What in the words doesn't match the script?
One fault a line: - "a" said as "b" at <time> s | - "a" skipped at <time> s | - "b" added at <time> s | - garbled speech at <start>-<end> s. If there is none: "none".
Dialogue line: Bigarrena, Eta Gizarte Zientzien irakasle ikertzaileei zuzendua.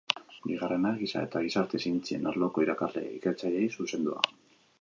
- "Giza" added at 1.0 s
- "arloko" added at 2.3 s